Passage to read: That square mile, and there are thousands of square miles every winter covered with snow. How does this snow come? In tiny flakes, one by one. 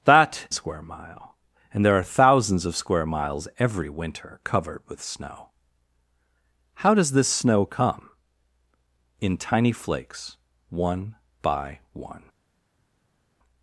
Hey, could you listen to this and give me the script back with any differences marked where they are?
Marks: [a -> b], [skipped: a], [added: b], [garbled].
That square mile, and there are thousands of square miles every winter covered with snow. How does this snow come? In tiny flakes, one by one.